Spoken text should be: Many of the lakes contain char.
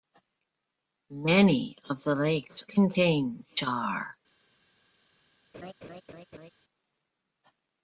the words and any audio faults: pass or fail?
fail